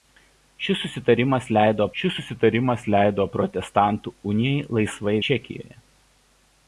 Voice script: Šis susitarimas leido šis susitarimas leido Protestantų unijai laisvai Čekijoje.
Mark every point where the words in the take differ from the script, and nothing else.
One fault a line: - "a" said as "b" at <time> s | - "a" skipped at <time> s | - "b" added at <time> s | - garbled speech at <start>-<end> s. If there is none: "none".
none